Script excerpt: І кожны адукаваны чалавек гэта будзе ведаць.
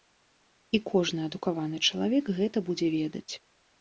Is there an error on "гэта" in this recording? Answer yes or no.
no